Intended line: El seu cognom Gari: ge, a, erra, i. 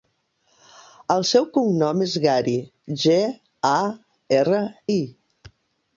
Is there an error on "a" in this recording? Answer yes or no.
no